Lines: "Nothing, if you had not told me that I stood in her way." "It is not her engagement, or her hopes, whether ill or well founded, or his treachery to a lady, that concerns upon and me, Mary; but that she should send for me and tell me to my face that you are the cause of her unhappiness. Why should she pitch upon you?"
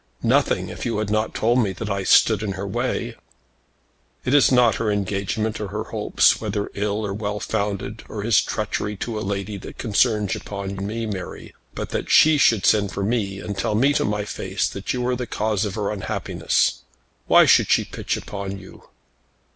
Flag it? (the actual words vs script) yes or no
no